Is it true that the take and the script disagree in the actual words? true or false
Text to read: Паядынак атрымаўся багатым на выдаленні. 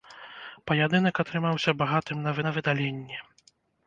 true